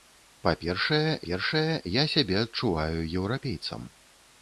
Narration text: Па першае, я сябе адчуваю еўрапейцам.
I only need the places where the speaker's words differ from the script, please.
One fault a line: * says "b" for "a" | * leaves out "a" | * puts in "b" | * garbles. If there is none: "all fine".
* puts in "першае"